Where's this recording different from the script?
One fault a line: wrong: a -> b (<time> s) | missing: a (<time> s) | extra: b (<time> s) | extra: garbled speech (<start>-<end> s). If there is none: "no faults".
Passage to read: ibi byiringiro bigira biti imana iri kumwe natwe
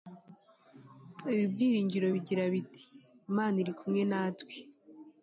no faults